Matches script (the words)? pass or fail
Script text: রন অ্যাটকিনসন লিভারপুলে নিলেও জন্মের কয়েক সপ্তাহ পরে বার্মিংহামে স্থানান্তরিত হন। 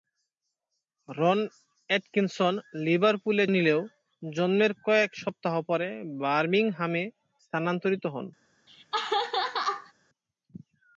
pass